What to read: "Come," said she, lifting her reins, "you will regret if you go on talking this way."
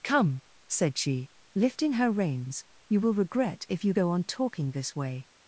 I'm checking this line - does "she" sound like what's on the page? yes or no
yes